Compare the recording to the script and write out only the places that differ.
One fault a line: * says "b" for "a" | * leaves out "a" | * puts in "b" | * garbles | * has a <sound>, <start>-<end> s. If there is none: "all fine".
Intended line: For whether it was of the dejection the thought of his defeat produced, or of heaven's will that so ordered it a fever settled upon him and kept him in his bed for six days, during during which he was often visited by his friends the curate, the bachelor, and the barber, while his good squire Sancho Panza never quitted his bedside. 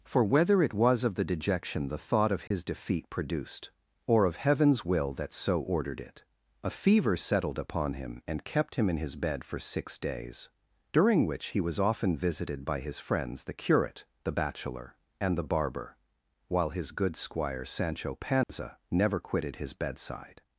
* has a dropout, 2.5-2.5 s
* leaves out "during"
* has a dropout, 18.4-18.5 s